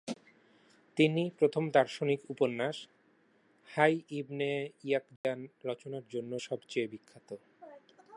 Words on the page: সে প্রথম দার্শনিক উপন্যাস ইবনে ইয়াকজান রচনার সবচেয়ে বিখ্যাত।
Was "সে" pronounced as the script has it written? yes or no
no